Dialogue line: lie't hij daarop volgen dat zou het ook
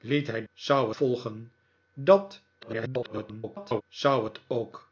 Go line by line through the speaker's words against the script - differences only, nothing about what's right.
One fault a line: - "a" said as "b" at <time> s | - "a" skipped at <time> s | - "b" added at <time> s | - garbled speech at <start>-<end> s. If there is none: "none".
- "daarop" said as "zou" at 0.5 s
- garbled speech at 2.6-3.8 s